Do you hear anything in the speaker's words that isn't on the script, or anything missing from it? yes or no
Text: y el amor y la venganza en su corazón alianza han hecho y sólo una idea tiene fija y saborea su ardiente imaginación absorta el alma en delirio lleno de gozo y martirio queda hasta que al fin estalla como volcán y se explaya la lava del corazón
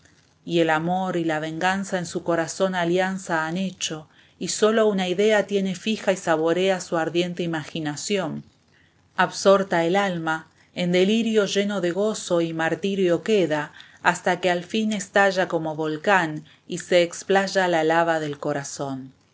no